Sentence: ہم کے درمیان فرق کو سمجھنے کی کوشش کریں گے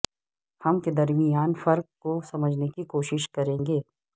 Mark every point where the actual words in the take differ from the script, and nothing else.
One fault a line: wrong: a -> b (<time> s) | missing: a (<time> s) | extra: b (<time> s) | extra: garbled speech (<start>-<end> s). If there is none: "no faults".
no faults